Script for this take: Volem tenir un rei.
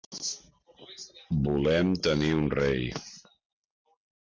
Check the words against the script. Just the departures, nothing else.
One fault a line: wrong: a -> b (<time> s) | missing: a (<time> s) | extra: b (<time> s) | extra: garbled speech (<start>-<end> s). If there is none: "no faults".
no faults